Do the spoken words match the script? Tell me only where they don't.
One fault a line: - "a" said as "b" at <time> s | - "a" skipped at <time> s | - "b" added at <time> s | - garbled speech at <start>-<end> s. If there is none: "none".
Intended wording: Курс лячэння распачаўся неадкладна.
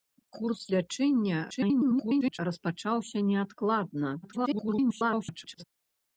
- garbled speech at 1.5-2.4 s
- garbled speech at 4.2-5.6 s